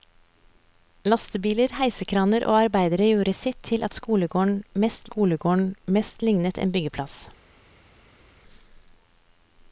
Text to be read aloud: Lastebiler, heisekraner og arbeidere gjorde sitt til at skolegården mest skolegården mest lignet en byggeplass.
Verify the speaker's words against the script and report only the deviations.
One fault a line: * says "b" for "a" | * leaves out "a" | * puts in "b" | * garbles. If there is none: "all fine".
all fine